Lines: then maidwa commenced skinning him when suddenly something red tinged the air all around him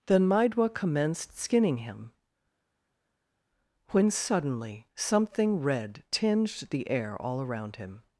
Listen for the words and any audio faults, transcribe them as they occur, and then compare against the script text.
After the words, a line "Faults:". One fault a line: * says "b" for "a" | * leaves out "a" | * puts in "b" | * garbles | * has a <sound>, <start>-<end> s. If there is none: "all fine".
then maidwa commenced skinning him when suddenly something red tinged the air all around him
Faults:
all fine